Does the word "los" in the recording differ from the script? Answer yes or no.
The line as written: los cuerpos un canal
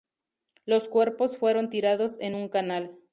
no